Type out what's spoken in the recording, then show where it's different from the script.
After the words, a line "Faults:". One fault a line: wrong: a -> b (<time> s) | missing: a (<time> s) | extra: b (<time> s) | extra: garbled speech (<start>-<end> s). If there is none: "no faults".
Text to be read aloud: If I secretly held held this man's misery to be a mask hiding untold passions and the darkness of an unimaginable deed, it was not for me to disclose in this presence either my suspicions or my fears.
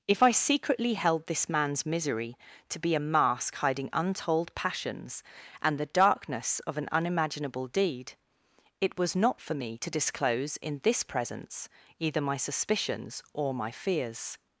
If I secretly held this man's misery to be a mask hiding untold passions and the darkness of an unimaginable deed, it was not for me to disclose in this presence either my suspicions or my fears.
Faults:
missing: held (1.3 s)